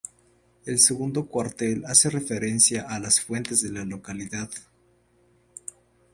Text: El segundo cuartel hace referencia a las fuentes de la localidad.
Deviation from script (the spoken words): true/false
false